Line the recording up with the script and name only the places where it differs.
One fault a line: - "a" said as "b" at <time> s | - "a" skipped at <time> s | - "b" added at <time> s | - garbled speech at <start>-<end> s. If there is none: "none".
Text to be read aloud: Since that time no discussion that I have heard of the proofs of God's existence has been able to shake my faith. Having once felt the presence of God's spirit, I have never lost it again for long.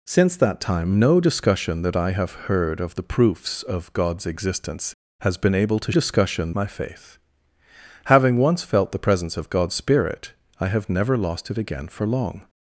- "shake" said as "discussion" at 5.9 s